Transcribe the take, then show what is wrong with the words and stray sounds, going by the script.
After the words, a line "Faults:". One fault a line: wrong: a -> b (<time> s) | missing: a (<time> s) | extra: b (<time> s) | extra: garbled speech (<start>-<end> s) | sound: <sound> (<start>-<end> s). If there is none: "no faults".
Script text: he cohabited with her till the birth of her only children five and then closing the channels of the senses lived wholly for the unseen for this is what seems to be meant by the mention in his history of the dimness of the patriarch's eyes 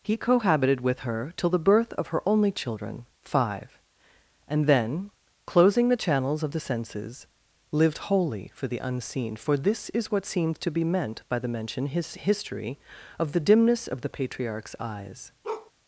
he cohabited with her till the birth of her only children five and then closing the channels of the senses lived wholly for the unseen for this is what seems to be meant by the mention his history of the dimness of the patriarch's eyes
Faults:
missing: in (11.9 s)
sound: bark (15.4-15.7 s)